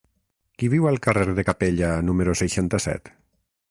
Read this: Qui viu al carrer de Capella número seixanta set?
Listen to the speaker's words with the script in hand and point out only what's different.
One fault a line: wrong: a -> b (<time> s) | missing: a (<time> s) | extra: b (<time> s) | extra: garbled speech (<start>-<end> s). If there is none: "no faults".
no faults